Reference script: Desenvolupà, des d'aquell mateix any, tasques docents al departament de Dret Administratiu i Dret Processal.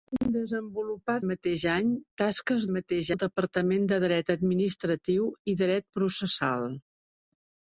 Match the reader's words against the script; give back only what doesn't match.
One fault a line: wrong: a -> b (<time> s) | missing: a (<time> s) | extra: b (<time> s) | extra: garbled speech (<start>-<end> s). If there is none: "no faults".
missing: des d'aquell (1.2 s)
wrong: docents -> mateix (2.8 s)